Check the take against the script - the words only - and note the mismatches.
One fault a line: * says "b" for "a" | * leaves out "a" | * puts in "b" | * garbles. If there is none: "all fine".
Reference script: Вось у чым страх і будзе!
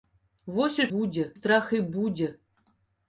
* says "будзе" for "чым"